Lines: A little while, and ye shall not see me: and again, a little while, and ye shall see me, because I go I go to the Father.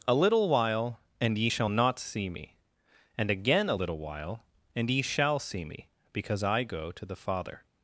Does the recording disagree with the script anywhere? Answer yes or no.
yes